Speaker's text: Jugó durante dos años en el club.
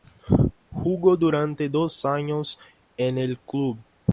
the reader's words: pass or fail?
pass